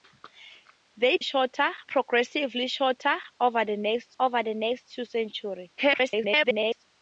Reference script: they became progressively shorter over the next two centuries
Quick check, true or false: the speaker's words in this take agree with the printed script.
false